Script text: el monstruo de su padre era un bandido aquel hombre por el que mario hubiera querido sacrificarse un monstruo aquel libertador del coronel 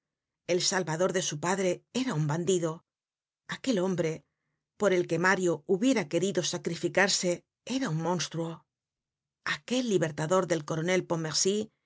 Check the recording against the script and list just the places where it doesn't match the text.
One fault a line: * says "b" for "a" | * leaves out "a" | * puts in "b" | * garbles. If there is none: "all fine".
* says "salvador" for "monstruo"
* puts in "era"